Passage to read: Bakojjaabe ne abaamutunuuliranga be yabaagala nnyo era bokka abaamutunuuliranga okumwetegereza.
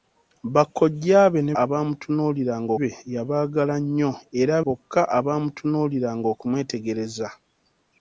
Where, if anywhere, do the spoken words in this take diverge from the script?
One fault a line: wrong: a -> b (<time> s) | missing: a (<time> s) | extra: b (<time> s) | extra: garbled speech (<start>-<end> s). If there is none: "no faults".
no faults